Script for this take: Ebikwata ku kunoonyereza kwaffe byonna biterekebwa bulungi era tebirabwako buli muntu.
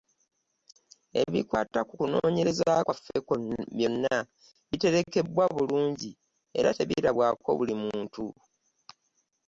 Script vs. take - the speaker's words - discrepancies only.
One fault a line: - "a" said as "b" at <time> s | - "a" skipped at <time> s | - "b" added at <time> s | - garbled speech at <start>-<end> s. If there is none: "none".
none